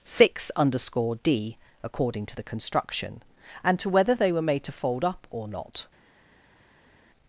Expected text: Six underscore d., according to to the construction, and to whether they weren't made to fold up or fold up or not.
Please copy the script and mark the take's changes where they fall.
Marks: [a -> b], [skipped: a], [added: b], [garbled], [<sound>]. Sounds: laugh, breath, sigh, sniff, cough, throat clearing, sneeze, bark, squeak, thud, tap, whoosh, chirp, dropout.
Six underscore d., according to [skipped: to] the construction, and to whether they [weren't -> were] made to fold up or [skipped: fold up or] not.